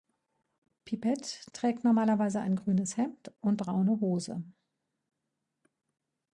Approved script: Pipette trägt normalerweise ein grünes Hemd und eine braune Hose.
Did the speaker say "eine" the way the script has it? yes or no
no